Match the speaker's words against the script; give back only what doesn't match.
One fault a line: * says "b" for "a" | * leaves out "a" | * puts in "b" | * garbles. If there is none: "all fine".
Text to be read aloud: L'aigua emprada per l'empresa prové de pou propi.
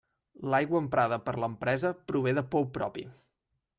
all fine